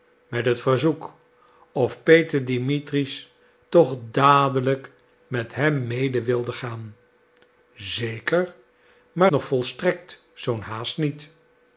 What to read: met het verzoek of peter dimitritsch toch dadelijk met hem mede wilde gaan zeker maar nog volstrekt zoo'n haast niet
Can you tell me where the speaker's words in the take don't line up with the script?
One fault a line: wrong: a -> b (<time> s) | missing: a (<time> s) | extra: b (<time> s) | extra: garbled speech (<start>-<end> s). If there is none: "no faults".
no faults